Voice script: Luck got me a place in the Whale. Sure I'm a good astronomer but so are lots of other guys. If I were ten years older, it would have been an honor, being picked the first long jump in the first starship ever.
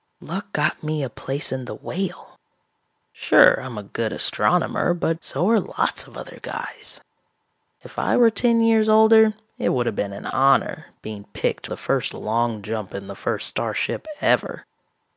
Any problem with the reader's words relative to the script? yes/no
no